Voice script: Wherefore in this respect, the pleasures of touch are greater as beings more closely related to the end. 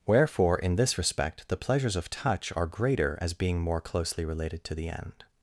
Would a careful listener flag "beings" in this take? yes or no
yes